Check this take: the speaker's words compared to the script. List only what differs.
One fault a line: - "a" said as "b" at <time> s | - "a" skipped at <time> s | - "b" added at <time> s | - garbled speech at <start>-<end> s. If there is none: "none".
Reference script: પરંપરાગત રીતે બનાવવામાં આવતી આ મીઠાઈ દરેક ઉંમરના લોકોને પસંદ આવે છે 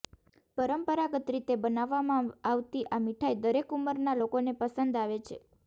none